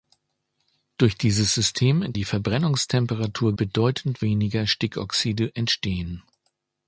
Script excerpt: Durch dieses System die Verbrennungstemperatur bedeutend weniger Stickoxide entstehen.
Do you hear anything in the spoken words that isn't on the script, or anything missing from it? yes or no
no